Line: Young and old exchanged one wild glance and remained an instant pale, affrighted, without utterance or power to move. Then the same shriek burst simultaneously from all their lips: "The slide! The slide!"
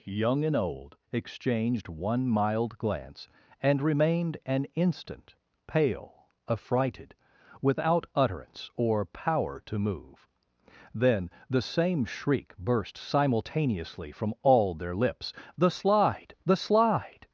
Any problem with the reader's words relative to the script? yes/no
yes